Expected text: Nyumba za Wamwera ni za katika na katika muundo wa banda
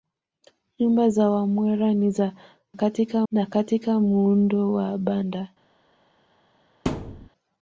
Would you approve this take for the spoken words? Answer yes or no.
yes